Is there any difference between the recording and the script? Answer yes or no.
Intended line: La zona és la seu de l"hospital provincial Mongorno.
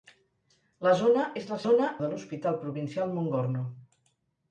yes